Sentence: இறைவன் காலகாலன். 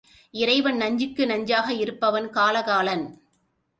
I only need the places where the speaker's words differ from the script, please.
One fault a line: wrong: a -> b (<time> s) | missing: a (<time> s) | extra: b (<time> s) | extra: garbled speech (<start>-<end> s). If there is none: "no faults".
extra: நஞ்சுக்கு நஞ்சாக இருப்பவன் (0.8 s)